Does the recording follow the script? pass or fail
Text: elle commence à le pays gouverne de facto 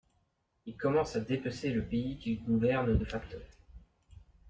fail